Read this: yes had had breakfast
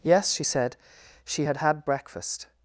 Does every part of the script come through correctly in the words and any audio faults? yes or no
no